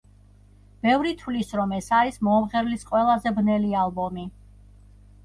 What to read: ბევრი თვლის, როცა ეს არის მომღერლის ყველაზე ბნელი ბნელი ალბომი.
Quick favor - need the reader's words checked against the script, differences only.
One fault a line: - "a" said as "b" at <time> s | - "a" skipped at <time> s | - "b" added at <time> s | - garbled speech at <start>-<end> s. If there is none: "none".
- "როცა" said as "რომ" at 1.6 s
- "ბნელი" skipped at 3.7 s